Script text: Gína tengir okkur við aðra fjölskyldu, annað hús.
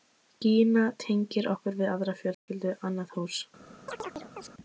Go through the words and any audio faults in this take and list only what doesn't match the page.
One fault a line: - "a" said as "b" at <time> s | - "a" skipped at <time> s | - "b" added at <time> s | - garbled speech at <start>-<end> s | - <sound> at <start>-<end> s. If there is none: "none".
- dropout at 2.3-2.5 s
- chirp at 3.9-4.5 s